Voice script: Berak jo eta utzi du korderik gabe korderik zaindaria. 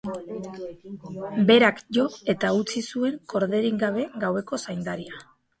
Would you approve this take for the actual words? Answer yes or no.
no